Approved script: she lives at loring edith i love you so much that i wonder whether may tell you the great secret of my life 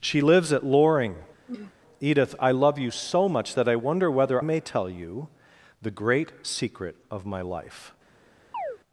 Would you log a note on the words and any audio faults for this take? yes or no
yes